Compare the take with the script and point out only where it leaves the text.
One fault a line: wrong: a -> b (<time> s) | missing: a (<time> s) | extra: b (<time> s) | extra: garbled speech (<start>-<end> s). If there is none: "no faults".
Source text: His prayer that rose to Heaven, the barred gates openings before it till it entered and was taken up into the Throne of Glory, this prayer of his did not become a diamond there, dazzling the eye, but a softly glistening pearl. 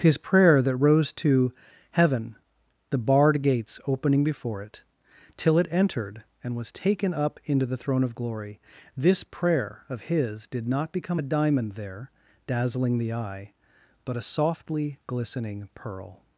wrong: openings -> opening (3.8 s)